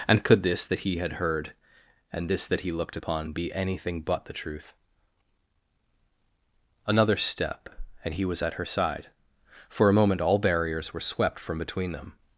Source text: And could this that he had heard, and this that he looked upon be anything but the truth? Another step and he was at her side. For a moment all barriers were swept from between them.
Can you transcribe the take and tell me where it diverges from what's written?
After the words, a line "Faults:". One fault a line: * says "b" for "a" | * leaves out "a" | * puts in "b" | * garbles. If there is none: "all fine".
And could this that he had heard, and this that he looked upon be anything but the truth? Another step and he was at her side. For a moment all barriers were swept from between them.
Faults:
all fine